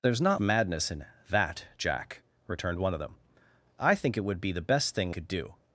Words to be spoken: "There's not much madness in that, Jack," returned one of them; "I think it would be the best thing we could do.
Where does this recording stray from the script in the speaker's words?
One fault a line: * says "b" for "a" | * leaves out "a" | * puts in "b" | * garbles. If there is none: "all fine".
* leaves out "much"
* leaves out "we"